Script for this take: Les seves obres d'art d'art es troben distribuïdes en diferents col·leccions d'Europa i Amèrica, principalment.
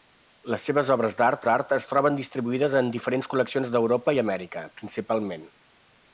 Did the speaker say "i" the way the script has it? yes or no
yes